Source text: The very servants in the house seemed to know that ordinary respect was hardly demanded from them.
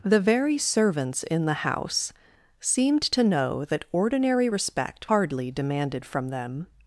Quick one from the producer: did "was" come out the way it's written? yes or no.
no